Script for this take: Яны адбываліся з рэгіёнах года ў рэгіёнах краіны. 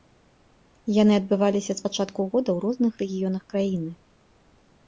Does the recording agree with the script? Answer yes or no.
no